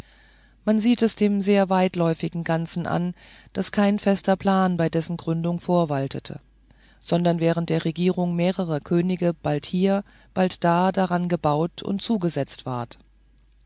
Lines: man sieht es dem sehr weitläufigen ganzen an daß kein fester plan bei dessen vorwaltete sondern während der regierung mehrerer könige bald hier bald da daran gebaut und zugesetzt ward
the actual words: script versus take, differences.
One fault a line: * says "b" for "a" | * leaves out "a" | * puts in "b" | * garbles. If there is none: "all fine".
* puts in "gründung"